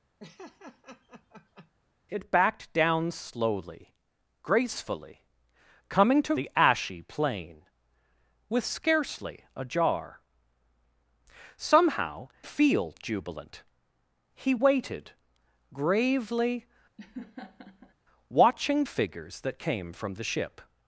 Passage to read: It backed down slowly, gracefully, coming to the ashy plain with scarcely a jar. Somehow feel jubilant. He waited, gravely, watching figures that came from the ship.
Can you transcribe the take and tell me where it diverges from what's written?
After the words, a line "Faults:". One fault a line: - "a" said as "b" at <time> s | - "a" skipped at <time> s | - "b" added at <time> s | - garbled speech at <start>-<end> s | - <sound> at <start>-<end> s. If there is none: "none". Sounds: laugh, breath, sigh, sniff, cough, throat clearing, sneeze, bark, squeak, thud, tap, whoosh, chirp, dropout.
It backed down slowly, gracefully, coming to the ashy plain with scarcely a jar. Somehow feel jubilant. He waited, gravely, watching figures that came from the ship.
Faults:
- laugh at 0.2-1.7 s
- laugh at 17.0-17.9 s